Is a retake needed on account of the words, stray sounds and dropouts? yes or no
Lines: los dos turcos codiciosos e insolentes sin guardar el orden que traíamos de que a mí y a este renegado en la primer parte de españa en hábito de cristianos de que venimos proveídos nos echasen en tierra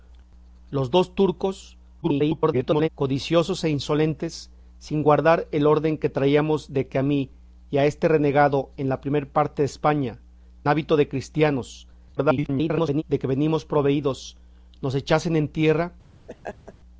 yes